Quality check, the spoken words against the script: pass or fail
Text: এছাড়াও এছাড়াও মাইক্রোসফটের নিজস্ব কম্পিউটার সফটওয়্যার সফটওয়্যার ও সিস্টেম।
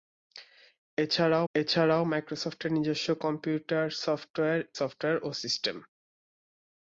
pass